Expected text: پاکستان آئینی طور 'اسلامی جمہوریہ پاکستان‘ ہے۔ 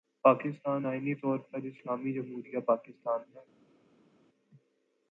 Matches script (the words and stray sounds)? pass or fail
fail